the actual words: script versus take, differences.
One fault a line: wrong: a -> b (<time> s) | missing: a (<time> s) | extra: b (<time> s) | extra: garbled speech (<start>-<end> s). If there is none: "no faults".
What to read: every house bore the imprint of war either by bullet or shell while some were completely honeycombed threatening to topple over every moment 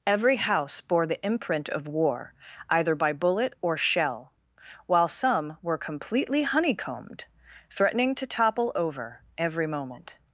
no faults